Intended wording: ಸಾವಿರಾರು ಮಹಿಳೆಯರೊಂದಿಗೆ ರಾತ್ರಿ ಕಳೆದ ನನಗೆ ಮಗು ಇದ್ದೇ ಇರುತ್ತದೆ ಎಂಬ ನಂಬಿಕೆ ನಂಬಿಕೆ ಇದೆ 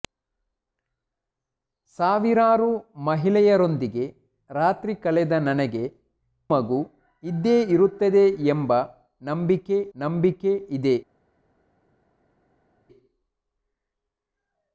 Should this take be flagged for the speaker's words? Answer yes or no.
no